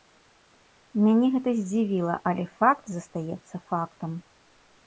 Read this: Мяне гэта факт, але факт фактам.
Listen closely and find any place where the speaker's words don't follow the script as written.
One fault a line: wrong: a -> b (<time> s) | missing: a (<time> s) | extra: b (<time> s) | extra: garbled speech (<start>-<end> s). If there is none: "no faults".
wrong: факт -> здзівіла (1.6 s)
extra: застаецца (3.0 s)